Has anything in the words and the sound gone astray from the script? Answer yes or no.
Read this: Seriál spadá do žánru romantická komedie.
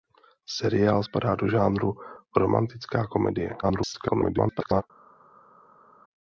yes